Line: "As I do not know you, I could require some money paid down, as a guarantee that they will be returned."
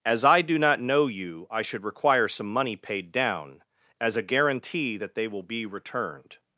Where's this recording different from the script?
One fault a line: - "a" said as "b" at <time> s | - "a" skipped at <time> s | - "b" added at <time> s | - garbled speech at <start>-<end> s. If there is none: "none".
- "could" said as "should" at 1.6 s